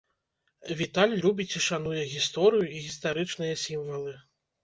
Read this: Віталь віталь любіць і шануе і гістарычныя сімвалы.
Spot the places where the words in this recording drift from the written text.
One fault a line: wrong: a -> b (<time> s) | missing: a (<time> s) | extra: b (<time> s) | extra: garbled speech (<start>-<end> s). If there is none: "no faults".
missing: віталь (1.1 s)
extra: гісторыю (2.1 s)